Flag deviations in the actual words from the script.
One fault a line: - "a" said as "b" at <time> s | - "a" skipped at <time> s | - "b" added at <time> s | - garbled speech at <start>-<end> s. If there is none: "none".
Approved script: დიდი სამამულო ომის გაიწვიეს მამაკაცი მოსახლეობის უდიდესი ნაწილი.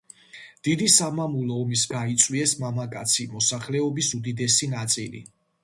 none